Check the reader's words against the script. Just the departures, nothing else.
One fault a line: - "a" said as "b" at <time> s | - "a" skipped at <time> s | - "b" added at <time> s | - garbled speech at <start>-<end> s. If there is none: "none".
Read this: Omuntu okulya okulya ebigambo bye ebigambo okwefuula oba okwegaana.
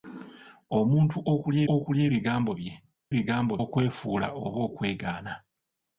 none